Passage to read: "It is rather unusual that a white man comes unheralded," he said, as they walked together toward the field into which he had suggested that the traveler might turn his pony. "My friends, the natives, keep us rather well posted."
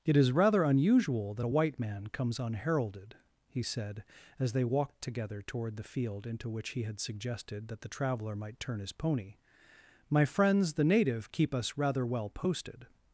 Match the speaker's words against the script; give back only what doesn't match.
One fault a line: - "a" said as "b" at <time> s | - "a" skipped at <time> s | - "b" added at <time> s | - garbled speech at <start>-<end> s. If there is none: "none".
- "natives" said as "native" at 10.8 s